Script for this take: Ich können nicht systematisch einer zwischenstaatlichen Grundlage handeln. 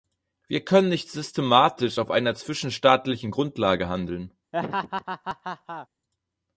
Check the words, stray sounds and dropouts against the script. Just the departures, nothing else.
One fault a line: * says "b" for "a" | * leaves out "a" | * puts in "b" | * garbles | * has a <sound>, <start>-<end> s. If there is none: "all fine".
* says "Wir" for "Ich"
* puts in "auf"
* has a laugh, 4.5-5.9 s